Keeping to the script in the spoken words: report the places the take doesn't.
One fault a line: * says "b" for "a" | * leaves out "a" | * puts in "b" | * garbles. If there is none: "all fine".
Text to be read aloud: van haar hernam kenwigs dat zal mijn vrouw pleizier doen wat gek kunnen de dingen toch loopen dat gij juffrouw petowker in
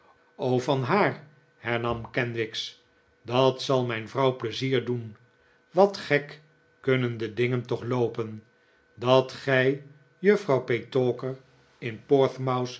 all fine